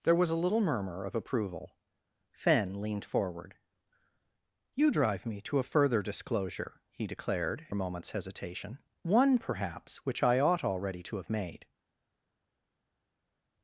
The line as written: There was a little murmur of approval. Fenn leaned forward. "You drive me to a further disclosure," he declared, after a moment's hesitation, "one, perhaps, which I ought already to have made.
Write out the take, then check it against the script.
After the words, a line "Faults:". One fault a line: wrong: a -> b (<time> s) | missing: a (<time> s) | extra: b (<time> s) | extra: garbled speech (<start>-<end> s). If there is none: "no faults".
There was a little murmur of approval. Fenn leaned forward. "You drive me to a further disclosure," he declared, a moment's hesitation, "one, perhaps, which I ought already to have made.
Faults:
missing: after (7.7 s)